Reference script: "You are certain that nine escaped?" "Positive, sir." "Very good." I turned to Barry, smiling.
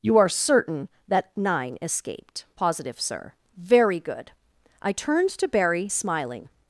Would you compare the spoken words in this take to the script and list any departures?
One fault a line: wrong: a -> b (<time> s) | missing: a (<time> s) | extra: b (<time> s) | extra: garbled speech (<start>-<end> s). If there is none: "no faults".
no faults